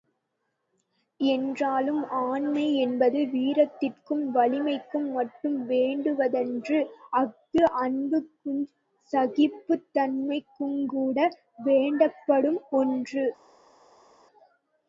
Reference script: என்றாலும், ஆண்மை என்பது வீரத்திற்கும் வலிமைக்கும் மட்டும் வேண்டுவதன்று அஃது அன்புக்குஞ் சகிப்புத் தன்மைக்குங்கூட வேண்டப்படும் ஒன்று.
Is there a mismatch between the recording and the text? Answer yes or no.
no